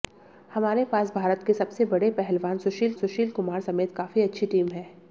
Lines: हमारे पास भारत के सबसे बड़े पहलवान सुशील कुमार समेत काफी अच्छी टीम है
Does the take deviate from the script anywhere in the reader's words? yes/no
yes